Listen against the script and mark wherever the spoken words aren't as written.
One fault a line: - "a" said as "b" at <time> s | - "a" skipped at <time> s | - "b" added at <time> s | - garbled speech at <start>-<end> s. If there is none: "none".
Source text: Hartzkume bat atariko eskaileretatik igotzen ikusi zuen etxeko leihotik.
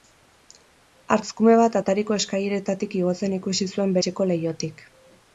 none